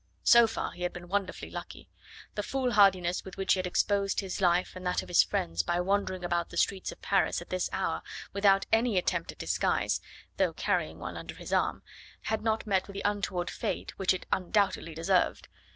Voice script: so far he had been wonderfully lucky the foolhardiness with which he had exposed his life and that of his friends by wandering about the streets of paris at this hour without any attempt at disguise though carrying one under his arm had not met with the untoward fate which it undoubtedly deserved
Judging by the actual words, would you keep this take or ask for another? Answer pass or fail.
pass